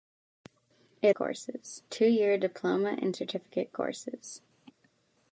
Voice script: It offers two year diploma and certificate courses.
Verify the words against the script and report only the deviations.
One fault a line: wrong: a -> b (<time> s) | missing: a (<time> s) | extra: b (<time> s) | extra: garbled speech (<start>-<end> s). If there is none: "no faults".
wrong: offers -> courses (1.1 s)